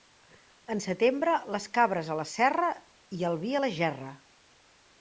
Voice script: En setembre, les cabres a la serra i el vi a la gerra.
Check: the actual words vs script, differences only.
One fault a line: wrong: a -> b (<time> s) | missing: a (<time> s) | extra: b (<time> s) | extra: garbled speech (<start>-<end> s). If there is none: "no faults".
no faults